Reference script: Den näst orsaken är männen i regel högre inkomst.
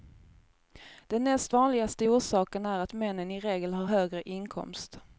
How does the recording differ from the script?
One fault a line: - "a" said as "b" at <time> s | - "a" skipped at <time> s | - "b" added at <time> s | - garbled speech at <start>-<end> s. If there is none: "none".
- "vanligaste" added at 1.5 s
- "att" added at 2.8 s
- "har" added at 3.7 s